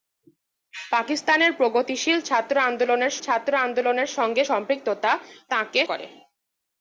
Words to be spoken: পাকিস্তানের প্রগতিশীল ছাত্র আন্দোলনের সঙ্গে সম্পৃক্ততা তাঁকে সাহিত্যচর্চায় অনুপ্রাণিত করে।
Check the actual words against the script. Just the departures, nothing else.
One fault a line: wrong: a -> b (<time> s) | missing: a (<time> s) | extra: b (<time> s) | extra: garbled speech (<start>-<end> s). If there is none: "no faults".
extra: ছাত্র আন্দোলনের (3.2 s)
missing: সাহিত্যচর্চায় অনুপ্রাণিত (5.8 s)